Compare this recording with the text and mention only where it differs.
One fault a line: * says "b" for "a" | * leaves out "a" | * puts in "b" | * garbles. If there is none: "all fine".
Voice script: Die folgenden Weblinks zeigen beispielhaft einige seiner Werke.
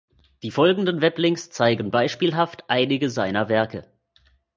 all fine